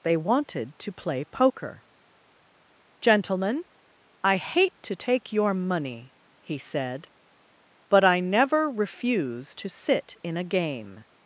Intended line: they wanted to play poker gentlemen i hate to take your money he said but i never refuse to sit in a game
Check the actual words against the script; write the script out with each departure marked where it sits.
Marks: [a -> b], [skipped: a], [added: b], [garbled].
they wanted to play poker gentlemen i hate to take your money he said but i never refuse to sit in a game